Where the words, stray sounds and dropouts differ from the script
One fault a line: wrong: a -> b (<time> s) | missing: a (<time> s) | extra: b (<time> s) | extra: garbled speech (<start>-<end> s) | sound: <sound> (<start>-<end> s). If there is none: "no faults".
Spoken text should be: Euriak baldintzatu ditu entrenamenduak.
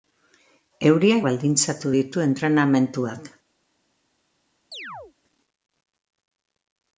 sound: chirp (4.7-5.1 s)